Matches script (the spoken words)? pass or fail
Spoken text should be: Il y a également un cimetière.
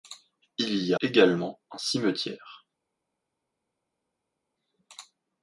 fail